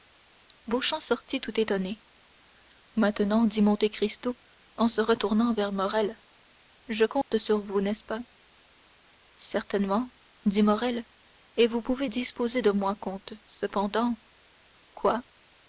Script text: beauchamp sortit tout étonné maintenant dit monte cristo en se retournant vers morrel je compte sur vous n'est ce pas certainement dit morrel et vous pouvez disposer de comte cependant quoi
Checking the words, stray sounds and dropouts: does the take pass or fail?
fail